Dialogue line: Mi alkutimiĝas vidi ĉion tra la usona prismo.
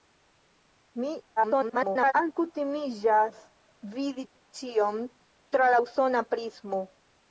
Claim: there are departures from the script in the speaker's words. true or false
true